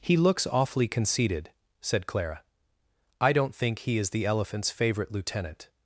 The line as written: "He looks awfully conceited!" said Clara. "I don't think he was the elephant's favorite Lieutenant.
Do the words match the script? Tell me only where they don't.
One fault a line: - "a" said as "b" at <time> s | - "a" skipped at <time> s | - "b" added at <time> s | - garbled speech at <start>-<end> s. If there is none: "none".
- "was" said as "is" at 4.0 s